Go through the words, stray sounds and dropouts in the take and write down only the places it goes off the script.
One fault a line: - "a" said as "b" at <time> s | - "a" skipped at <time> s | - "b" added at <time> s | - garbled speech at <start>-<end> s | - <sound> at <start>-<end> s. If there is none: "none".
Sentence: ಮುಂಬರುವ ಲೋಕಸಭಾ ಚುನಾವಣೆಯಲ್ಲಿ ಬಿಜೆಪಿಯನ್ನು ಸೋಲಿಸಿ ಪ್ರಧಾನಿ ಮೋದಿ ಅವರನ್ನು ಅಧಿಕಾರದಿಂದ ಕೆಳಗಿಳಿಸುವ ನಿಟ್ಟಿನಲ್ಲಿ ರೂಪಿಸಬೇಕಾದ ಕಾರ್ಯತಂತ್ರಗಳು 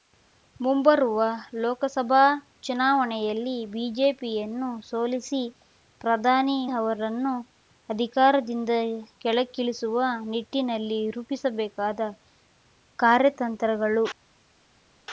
- "ಮೋದಿ" skipped at 6.6 s